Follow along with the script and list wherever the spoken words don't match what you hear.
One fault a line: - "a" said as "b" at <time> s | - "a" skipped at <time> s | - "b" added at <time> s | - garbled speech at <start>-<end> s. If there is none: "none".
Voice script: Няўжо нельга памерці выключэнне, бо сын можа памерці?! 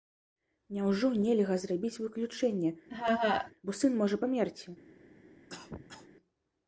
- "памерці" said as "зрабіць" at 1.6 s